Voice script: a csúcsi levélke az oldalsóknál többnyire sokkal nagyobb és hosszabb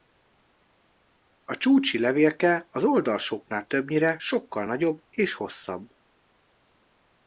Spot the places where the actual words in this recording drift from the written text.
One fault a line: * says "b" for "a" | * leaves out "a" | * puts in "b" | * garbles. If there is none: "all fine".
all fine